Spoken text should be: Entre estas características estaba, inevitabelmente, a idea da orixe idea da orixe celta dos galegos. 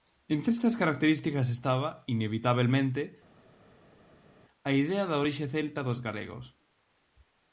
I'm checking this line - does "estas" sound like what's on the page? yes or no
yes